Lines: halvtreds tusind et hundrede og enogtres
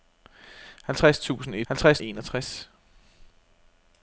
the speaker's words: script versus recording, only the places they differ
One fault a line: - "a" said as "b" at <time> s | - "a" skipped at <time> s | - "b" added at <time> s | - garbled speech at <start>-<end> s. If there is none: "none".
- "hundrede" said as "halvtreds" at 1.6 s